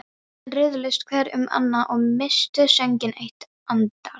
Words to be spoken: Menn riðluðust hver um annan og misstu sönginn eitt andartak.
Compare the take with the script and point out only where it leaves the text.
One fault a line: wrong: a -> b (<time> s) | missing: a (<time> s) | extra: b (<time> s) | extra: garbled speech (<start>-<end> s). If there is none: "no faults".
no faults